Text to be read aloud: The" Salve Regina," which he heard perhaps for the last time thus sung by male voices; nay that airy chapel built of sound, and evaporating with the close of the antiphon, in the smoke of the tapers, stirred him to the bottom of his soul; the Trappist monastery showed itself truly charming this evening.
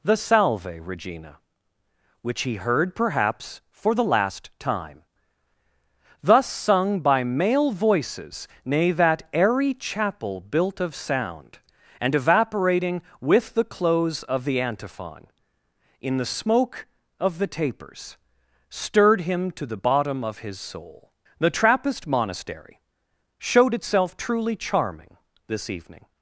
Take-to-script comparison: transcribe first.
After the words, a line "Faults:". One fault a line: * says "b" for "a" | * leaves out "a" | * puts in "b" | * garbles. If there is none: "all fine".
The" Salve Regina," which he heard perhaps for the last time thus sung by male voices; nay that airy chapel built of sound, and evaporating with the close of the antiphon, in the smoke of the tapers, stirred him to the bottom of his soul; the Trappist monastery showed itself truly charming this evening.
Faults:
all fine